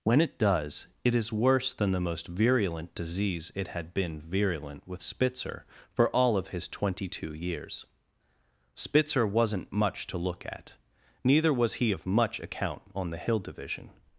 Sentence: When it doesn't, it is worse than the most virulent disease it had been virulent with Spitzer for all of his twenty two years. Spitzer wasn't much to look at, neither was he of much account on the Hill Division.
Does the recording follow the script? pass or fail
fail